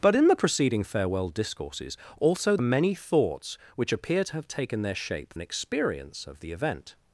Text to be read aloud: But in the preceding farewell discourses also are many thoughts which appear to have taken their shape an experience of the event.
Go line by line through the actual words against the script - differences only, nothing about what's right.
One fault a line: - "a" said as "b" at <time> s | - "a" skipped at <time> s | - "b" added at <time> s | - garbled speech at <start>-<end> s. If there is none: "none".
none